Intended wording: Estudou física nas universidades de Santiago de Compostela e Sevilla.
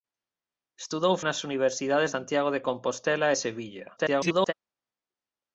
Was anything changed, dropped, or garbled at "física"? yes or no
yes